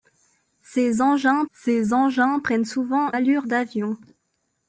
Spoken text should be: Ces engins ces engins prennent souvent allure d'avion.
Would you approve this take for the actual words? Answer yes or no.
yes